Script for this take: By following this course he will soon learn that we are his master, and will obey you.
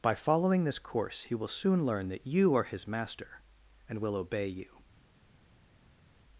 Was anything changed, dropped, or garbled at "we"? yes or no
yes